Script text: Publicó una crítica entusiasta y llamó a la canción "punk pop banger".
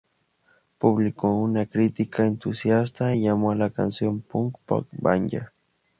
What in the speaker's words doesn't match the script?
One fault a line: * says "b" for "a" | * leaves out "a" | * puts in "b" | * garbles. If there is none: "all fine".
all fine